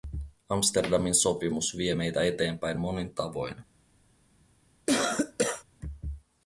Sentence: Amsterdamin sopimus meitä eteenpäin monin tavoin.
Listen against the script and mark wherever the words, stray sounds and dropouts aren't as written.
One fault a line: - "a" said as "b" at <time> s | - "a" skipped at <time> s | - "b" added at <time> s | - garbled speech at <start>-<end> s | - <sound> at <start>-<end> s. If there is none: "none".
- "vie" added at 1.8 s
- cough at 4.9-5.6 s